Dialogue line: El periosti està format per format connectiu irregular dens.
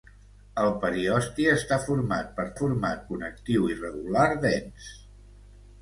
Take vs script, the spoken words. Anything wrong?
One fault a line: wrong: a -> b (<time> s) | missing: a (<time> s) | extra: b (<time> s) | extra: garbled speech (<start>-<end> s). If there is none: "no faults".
no faults